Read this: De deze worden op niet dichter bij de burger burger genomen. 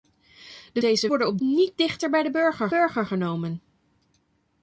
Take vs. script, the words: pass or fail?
pass